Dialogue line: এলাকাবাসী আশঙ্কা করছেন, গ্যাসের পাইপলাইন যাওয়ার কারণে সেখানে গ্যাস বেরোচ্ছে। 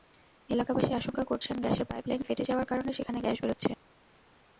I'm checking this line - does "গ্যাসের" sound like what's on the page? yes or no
yes